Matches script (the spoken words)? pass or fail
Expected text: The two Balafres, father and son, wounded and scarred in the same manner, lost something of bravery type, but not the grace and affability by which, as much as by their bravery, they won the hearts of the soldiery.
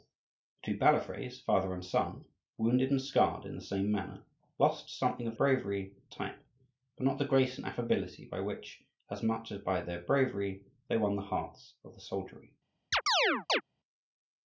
pass